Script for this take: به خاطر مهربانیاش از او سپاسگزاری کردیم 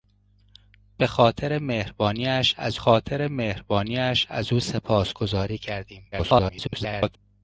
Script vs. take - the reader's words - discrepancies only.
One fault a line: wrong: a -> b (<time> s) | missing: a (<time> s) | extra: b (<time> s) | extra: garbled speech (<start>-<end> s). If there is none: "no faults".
extra: خاطر مهربانیاش از (2.7 s)
extra: garbled speech (6.1-7.2 s)